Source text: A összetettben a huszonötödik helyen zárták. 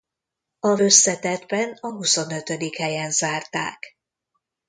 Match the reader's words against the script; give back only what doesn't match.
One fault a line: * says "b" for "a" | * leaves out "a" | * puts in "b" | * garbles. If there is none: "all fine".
all fine